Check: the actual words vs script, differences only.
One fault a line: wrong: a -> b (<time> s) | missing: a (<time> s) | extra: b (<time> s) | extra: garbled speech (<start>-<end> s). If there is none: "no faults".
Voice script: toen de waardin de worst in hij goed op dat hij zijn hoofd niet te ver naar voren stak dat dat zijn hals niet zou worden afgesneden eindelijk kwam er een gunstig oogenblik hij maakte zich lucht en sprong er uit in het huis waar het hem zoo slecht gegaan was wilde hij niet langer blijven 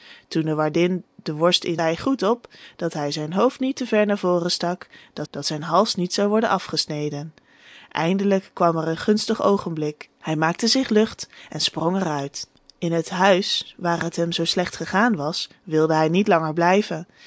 no faults